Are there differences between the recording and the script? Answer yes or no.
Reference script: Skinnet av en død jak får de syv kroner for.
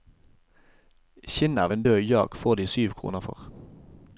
no